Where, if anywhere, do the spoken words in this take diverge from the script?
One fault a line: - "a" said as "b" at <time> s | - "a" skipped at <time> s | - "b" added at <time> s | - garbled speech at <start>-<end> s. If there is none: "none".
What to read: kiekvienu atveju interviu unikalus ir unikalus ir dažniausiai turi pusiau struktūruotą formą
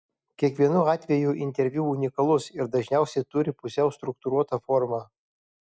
- "unikalus ir" skipped at 2.7 s